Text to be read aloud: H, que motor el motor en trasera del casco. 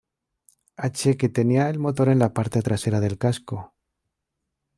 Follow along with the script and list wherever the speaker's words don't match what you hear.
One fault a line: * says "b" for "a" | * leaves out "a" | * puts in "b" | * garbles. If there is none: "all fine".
* says "tenía" for "motor"
* puts in "la parte"